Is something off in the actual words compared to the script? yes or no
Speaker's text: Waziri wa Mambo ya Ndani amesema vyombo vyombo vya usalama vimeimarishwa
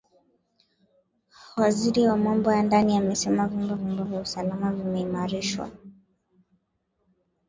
no